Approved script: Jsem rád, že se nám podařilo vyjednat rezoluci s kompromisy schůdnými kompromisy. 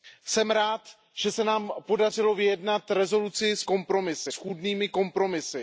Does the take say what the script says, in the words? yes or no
yes